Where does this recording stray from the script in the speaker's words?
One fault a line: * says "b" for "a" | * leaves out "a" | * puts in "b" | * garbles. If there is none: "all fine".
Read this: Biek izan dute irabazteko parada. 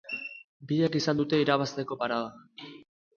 all fine